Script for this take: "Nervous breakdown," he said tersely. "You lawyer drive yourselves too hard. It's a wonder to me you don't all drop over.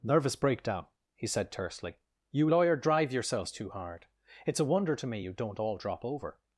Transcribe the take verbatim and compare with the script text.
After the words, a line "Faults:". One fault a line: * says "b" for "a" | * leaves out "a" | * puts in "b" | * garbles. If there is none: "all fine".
"Nervous breakdown," he said tersely. "You lawyer drive yourselves too hard. It's a wonder to me you don't all drop over.
Faults:
all fine